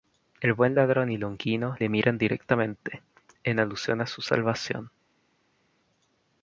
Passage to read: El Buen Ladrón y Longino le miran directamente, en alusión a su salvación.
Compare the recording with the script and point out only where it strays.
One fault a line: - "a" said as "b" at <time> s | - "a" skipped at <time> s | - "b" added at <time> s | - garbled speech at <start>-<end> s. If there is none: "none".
none